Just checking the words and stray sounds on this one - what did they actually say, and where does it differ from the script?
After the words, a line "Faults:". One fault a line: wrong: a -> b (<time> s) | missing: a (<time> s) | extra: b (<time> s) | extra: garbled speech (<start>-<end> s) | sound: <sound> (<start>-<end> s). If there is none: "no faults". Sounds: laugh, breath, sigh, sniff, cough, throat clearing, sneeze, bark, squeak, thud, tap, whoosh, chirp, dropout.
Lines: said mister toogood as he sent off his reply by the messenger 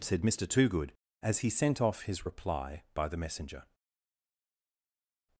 said mister toogood as he sent off his reply by the messenger
Faults:
no faults